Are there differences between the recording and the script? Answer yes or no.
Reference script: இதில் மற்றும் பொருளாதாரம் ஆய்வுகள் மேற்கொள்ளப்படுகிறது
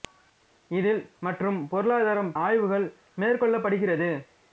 no